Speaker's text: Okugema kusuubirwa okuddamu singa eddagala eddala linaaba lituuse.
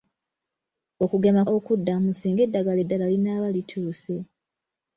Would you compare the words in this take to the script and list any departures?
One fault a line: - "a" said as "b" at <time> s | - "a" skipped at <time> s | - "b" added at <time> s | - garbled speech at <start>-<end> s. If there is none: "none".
- "kusuubirwa" skipped at 1.4 s